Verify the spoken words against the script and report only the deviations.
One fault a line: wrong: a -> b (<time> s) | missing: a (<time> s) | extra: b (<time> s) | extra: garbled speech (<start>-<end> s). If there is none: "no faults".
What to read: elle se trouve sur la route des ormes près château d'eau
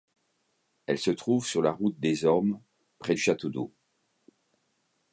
no faults